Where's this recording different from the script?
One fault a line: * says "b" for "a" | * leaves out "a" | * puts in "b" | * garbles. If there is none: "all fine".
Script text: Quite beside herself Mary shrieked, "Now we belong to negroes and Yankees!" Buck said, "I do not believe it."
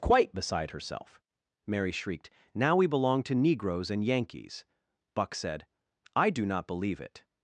all fine